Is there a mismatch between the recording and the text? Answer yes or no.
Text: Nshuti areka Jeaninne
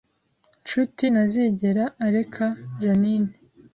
yes